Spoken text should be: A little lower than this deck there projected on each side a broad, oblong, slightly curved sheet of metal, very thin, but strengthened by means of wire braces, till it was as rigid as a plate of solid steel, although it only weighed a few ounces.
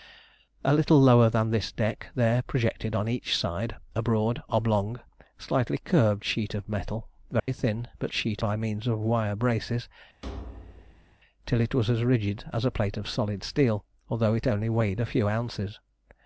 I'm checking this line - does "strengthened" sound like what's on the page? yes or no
no